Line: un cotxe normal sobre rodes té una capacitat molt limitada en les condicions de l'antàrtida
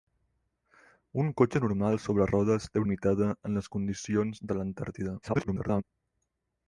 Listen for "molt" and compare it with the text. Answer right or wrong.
wrong